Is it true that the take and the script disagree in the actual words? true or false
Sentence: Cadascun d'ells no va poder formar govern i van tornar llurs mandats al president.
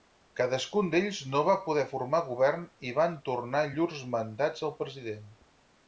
false